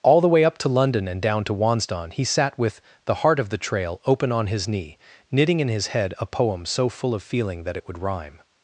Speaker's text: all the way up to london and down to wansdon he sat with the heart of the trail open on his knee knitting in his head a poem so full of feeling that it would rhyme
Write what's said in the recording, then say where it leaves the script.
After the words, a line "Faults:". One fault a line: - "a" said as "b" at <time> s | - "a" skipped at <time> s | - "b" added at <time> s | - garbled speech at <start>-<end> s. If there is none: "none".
all the way up to london and down to wansdon he sat with the heart of the trail open on his knee knitting in his head a poem so full of feeling that it would rhyme
Faults:
none